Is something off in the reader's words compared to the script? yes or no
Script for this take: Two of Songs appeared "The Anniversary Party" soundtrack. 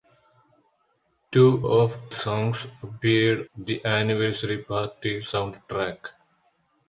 no